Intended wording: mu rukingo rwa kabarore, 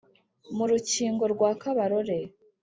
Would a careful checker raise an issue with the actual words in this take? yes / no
no